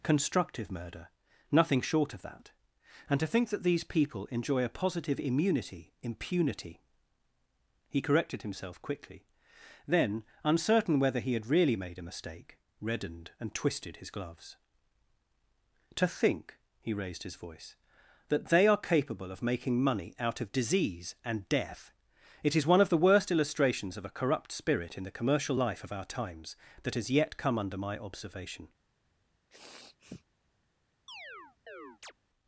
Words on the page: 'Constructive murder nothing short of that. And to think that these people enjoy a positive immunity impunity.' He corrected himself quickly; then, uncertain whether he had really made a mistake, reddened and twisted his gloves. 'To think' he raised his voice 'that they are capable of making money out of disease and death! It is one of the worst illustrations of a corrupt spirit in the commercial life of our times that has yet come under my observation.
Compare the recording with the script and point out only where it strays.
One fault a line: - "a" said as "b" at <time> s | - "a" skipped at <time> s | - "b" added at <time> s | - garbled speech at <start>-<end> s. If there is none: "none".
none